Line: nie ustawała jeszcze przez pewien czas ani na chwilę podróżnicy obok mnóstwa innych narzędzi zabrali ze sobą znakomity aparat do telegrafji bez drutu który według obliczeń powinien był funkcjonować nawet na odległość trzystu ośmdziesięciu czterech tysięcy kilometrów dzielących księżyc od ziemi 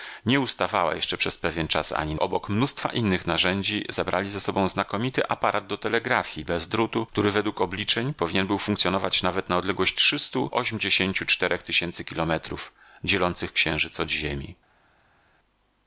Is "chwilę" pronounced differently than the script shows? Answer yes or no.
yes